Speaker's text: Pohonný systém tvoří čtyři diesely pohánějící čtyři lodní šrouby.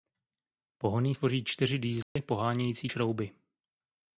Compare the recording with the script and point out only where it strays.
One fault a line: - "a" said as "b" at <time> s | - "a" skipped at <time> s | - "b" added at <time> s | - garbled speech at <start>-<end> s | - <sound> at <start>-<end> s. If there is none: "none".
- "systém" skipped at 1.1 s
- dropout at 2.0-2.2 s
- "čtyři lodní" skipped at 2.9 s